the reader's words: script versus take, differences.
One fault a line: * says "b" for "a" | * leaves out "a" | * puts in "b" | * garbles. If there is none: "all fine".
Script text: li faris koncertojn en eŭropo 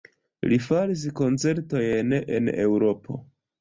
all fine